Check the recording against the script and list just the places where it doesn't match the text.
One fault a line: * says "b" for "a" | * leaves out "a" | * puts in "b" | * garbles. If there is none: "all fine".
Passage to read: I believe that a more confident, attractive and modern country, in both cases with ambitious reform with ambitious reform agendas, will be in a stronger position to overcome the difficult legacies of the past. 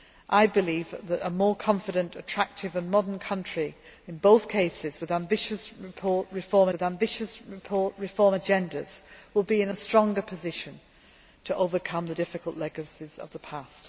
all fine